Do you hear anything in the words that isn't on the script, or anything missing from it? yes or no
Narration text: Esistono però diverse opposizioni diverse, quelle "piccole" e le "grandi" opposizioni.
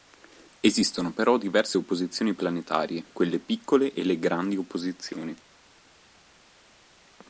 yes